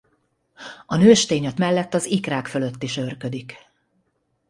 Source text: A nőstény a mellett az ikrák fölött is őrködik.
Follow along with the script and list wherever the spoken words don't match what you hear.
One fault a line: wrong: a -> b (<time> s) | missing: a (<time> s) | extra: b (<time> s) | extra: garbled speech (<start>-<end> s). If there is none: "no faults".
no faults